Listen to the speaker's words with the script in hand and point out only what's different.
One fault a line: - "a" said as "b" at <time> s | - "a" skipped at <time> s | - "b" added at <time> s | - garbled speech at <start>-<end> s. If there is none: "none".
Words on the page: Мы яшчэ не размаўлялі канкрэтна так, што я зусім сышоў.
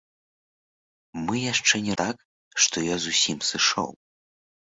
- "размаўлялі канкрэтна" skipped at 1.9 s